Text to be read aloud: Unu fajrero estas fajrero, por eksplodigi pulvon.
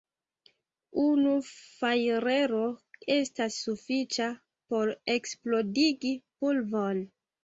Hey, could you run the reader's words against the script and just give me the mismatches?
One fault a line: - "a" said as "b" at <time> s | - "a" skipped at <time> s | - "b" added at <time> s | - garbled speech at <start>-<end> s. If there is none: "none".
- "fajrero" said as "sufiĉa" at 3.6 s